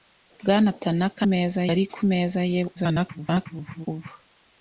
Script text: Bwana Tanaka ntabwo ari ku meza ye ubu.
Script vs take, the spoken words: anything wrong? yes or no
yes